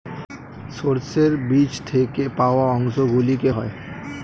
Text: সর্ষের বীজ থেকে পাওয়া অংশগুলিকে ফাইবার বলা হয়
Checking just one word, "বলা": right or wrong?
wrong